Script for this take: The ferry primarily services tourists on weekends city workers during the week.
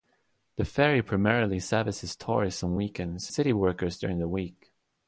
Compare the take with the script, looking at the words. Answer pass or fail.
pass